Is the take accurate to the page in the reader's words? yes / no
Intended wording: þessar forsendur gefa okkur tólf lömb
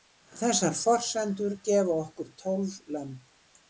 yes